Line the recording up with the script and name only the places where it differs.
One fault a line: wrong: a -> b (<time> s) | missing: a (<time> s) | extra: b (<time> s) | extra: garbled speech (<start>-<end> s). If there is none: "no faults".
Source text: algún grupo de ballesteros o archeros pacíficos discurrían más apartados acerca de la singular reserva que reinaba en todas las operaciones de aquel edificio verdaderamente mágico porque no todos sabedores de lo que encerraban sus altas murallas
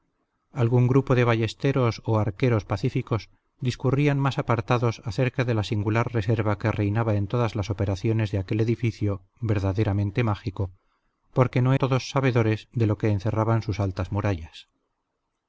no faults